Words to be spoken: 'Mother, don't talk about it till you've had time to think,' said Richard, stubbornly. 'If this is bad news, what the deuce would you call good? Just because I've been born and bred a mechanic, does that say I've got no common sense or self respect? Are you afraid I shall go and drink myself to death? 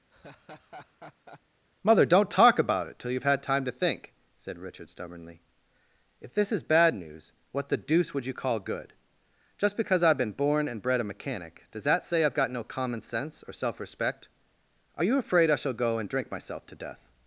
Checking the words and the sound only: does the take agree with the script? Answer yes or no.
no